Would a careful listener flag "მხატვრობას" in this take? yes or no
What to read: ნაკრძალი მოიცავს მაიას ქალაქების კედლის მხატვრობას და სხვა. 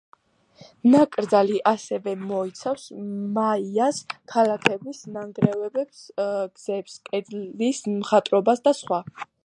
no